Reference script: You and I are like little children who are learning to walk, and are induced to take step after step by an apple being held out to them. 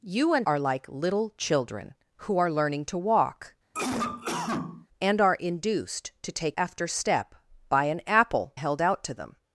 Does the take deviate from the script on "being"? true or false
true